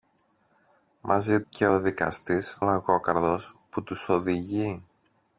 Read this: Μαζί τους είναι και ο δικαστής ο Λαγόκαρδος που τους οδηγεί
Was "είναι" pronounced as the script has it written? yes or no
no